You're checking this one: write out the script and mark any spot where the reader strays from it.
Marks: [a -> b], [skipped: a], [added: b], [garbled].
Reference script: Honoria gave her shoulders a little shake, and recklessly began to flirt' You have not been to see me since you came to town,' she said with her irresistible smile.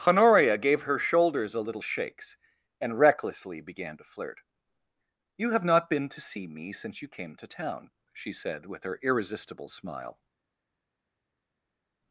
Honoria gave her shoulders a little [shake, -> shakes] and recklessly began to flirt' You have not been to see me since you came to town,' she said with her irresistible smile.